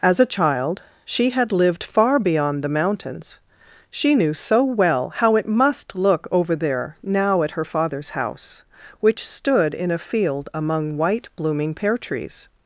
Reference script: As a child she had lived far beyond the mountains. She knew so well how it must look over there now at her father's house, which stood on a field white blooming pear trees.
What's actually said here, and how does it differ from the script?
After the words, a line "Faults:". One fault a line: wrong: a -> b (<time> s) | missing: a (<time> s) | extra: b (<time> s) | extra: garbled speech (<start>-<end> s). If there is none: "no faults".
As a child she had lived far beyond the mountains. She knew so well how it must look over there now at her father's house, which stood in a field among white blooming pear trees.
Faults:
wrong: on -> in (9.8 s)
extra: among (10.6 s)